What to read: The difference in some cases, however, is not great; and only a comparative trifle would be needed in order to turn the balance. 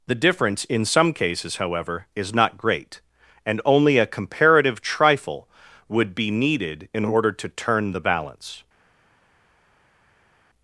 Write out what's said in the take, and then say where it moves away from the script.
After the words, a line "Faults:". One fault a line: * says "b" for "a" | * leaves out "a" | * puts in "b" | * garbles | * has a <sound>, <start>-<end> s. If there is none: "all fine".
The difference in some cases, however, is not great; and only a comparative trifle would be needed in order to turn the balance.
Faults:
all fine